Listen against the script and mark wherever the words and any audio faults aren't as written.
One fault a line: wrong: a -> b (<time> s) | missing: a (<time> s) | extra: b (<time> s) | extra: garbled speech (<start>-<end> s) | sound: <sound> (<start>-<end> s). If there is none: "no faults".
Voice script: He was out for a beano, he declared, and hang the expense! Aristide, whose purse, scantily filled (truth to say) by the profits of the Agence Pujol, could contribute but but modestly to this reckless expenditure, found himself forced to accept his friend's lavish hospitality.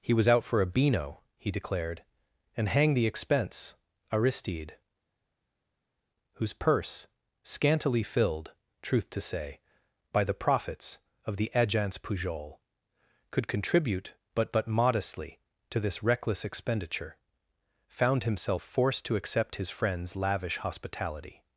no faults